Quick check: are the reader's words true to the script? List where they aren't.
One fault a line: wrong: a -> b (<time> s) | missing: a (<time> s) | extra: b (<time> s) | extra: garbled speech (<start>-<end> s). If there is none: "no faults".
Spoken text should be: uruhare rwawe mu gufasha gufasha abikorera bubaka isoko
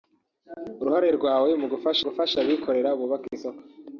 no faults